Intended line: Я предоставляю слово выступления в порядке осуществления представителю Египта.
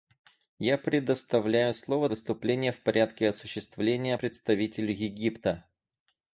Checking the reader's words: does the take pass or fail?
pass